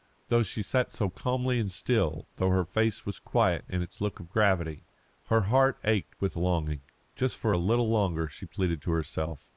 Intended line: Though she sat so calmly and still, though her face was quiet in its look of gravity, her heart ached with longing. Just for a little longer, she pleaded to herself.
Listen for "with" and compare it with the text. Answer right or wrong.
right